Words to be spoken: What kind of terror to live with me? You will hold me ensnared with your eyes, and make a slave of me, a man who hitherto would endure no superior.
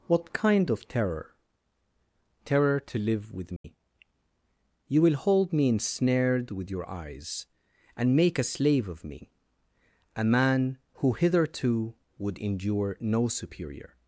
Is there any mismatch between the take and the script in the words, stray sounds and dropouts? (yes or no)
yes